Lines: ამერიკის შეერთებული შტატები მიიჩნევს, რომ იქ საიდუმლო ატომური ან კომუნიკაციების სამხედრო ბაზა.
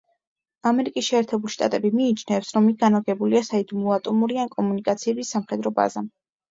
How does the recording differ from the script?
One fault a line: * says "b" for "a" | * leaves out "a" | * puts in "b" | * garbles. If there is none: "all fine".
* puts in "განლაგებულია"